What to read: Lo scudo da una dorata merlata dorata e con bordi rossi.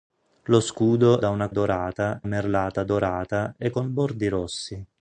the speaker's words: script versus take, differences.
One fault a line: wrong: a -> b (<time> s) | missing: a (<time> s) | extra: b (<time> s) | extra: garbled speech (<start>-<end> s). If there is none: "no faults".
no faults